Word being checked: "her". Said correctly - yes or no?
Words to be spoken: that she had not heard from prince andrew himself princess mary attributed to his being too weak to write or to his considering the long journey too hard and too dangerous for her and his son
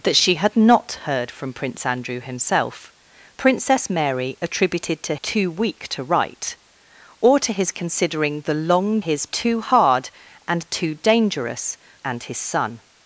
no